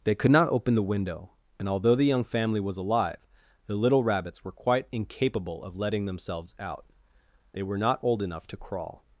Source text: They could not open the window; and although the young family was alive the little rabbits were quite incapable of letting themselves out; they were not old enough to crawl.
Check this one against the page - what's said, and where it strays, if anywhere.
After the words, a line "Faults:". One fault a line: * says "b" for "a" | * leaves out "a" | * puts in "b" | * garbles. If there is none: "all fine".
They could not open the window; and although the young family was alive the little rabbits were quite incapable of letting themselves out; they were not old enough to crawl.
Faults:
all fine